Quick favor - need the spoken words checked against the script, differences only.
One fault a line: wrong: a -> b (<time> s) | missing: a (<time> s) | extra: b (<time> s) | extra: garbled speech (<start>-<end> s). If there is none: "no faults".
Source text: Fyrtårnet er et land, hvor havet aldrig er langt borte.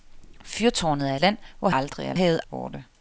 missing: et (1.1 s)
missing: havet (1.7 s)
wrong: langt -> havet (2.1 s)